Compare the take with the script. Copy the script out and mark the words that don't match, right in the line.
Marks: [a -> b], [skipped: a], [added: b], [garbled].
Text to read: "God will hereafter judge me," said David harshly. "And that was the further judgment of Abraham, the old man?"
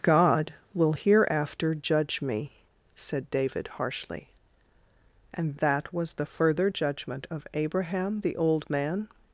"God will hereafter judge me," said David harshly. "And that was the further judgment of Abraham, the old man?"